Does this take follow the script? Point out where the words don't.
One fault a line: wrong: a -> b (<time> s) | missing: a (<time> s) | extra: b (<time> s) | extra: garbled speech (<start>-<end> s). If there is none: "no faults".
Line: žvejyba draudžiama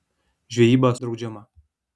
no faults